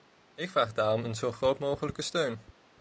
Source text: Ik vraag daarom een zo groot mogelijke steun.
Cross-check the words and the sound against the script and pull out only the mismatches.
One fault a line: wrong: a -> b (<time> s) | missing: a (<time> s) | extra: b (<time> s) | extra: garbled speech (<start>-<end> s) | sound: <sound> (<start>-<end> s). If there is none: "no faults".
no faults